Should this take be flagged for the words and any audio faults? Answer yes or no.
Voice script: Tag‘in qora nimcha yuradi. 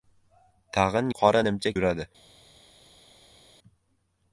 no